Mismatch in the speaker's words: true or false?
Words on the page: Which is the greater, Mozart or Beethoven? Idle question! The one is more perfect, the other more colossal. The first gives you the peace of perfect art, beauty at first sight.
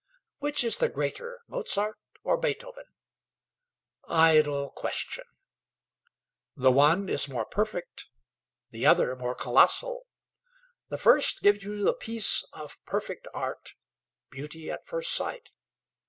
false